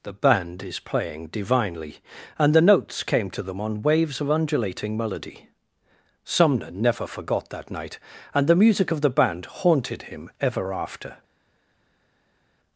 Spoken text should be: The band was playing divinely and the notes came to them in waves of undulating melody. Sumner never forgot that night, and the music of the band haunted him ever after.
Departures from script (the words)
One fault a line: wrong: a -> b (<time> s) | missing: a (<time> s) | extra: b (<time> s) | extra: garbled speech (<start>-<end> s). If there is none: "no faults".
wrong: was -> is (0.6 s)
wrong: in -> on (3.6 s)